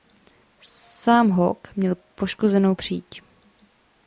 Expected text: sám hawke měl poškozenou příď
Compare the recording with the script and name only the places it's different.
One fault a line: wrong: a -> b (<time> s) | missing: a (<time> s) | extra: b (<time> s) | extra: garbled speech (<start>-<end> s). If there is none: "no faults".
no faults